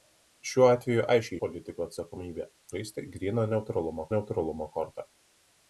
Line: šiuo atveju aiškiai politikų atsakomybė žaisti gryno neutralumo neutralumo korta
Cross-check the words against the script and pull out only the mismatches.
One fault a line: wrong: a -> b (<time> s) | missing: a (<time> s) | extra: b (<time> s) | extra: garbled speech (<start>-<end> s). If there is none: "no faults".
no faults